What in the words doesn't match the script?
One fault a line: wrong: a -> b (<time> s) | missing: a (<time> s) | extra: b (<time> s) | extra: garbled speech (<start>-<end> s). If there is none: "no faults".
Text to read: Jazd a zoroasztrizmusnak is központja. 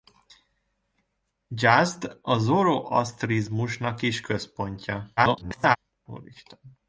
extra: garbled speech (5.2-5.8 s)